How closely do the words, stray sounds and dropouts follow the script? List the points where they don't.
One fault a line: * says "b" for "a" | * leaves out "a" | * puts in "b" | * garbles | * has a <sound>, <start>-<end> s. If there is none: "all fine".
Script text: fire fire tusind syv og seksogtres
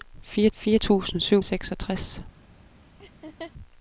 * has a laugh, 3.0-3.5 s